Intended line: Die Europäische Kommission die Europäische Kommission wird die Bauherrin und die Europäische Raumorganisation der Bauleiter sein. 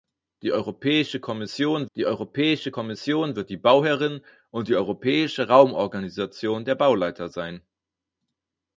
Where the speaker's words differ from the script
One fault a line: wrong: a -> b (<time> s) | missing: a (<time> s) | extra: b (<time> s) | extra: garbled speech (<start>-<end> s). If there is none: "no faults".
no faults